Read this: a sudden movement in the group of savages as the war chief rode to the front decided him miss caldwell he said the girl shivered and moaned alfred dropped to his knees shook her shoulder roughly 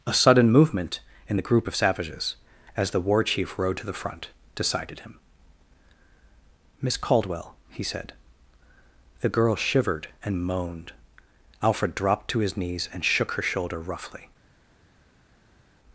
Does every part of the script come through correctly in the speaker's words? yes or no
no